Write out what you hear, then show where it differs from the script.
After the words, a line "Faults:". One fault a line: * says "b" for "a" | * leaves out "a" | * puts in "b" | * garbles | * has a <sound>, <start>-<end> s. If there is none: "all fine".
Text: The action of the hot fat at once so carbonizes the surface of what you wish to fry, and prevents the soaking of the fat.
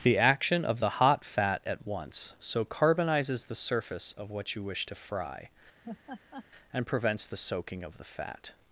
The action of the hot fat at once so carbonizes the surface of what you wish to fry, and prevents the soaking of the fat.
Faults:
* has a laugh, 5.8-6.5 s